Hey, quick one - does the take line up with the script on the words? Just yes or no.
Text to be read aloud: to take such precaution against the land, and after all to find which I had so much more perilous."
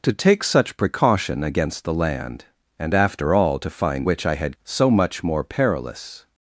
yes